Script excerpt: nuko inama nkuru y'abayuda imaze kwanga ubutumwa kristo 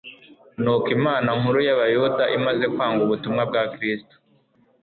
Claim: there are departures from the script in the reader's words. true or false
true